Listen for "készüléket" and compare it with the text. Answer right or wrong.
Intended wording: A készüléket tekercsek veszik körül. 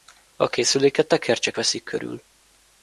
right